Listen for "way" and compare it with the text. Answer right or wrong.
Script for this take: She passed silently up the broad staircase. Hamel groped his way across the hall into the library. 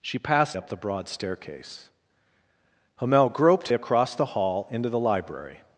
wrong